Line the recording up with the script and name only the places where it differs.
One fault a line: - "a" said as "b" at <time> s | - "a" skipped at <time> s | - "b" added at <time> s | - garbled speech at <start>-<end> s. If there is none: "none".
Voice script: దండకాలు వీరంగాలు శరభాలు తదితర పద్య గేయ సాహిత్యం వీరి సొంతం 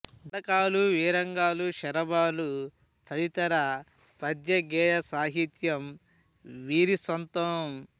none